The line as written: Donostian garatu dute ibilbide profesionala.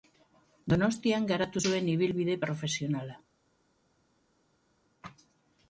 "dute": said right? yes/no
no